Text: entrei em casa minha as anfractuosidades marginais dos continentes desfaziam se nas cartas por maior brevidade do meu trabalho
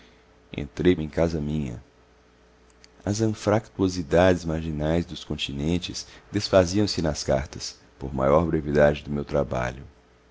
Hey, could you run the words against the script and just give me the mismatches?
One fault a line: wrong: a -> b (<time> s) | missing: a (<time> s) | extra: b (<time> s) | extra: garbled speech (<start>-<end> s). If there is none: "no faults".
no faults